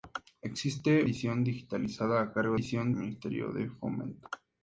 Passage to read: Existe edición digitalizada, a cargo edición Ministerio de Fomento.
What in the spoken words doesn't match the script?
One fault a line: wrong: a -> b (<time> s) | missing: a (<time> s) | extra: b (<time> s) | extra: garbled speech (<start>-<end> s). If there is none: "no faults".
no faults